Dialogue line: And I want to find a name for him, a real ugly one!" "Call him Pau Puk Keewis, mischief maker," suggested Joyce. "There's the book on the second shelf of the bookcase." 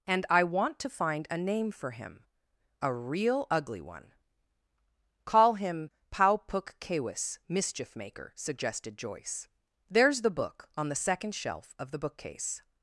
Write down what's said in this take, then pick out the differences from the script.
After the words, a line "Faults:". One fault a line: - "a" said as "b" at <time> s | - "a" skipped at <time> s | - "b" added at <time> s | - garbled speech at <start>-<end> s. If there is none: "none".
And I want to find a name for him, a real ugly one!" "Call him Pau Puk Keewis, mischief maker," suggested Joyce. "There's the book on the second shelf of the bookcase."
Faults:
none